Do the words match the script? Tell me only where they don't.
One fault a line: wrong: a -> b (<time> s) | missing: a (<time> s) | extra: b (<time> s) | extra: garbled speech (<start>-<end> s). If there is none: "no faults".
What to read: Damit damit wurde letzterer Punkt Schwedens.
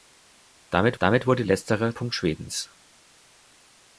no faults